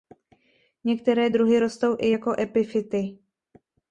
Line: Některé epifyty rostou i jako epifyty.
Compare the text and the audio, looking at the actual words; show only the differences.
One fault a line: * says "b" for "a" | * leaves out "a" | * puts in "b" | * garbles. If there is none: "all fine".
* says "druhy" for "epifyty"